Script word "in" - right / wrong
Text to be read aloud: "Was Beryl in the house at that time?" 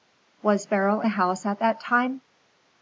wrong